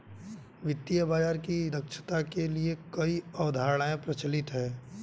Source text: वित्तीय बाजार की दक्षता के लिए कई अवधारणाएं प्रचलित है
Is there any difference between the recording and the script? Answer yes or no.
no